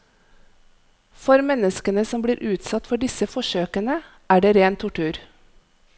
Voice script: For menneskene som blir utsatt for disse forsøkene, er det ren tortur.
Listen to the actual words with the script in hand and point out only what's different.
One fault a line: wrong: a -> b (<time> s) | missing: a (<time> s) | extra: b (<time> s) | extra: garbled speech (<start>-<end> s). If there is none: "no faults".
no faults